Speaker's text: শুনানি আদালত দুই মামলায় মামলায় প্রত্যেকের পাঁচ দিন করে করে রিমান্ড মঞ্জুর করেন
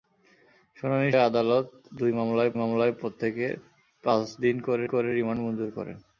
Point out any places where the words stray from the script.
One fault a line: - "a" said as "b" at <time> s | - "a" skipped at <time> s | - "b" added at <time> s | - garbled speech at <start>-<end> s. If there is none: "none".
none